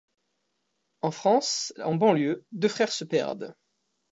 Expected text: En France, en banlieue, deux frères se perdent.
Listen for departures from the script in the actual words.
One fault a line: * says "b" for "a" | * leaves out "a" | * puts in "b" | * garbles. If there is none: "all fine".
all fine